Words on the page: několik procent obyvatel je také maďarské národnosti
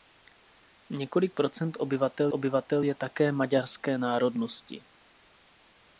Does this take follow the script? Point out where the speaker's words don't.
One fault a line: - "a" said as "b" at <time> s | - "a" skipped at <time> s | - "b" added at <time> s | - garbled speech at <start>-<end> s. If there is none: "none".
- "obyvatel" added at 2.3 s